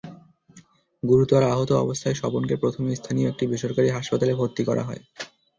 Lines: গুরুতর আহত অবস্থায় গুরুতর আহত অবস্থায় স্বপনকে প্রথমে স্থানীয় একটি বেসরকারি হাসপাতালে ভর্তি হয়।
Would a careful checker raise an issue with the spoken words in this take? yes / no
yes